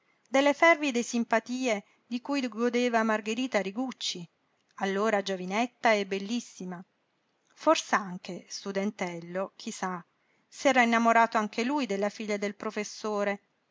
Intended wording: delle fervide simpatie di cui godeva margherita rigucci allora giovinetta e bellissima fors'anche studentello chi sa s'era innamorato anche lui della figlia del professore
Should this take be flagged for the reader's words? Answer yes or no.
no